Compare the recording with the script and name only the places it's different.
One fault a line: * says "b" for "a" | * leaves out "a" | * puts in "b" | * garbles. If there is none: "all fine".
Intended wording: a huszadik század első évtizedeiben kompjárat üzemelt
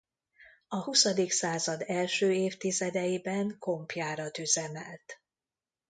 all fine